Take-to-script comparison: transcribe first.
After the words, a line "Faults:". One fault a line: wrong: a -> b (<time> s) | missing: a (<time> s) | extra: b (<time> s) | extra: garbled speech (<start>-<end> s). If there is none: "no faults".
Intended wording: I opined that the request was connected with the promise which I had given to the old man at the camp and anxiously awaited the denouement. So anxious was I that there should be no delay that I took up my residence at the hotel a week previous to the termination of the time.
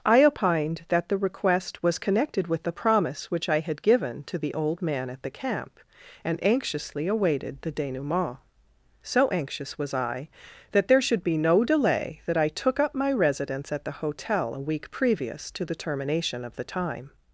I opined that the request was connected with the promise which I had given to the old man at the camp and anxiously awaited the denouement. So anxious was I that there should be no delay that I took up my residence at the hotel a week previous to the termination of the time.
Faults:
no faults